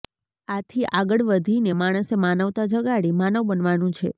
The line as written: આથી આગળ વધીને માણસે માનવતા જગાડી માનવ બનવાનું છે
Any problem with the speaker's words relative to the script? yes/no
no